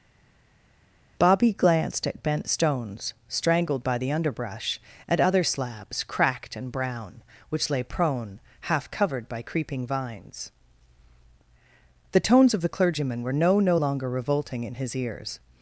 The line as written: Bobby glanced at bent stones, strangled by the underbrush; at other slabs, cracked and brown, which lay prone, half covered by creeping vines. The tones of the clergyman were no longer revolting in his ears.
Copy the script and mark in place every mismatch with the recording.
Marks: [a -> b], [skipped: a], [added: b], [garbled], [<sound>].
Bobby glanced at bent stones, strangled by the underbrush; at other slabs, cracked and brown, which lay prone, half covered by creeping vines. The tones of the clergyman were no [added: no] longer revolting in his ears.